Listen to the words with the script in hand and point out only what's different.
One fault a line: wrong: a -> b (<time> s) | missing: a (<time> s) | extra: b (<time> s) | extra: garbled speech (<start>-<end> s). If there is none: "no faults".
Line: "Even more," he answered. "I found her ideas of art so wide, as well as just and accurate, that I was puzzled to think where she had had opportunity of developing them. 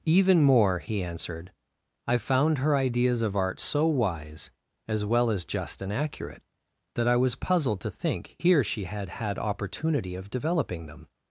wrong: wide -> wise (3.9 s)
wrong: where -> here (8.4 s)